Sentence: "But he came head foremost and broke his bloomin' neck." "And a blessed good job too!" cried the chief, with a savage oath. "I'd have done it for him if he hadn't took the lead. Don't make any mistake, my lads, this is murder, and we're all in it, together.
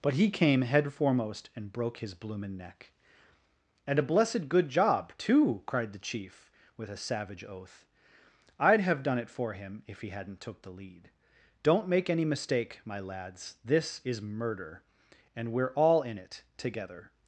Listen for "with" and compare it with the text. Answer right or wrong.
right